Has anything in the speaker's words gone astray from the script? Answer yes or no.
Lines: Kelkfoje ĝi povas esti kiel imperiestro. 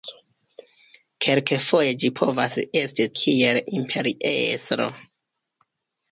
no